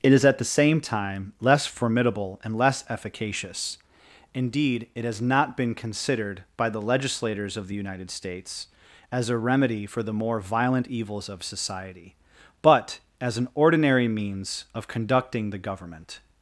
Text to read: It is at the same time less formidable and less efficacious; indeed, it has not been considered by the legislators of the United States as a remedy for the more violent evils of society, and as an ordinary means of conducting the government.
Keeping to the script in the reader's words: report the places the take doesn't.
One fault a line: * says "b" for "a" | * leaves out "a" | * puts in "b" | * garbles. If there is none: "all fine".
* says "but" for "and"